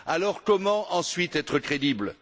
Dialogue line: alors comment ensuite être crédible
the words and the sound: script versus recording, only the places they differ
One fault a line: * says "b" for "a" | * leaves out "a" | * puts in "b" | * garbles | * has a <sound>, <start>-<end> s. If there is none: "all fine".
all fine